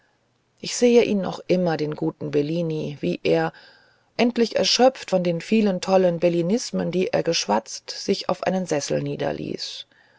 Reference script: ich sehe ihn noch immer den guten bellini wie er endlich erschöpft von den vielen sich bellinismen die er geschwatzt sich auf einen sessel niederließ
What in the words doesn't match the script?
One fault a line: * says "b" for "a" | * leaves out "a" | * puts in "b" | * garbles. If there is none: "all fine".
* says "tollen" for "sich"